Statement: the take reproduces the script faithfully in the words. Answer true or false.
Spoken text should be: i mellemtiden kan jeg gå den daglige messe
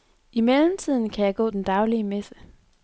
true